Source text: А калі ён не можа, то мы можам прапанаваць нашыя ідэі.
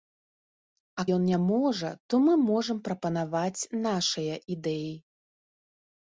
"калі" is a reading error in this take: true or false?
true